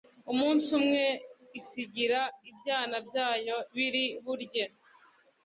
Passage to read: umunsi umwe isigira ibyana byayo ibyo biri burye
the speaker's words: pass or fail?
fail